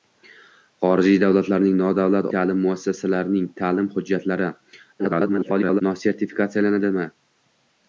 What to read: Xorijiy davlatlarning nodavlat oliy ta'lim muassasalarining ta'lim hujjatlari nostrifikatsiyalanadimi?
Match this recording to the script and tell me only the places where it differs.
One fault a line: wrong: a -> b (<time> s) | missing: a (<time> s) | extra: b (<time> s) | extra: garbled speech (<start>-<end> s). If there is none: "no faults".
missing: oliy (2.3 s)
extra: garbled speech (5.0-5.8 s)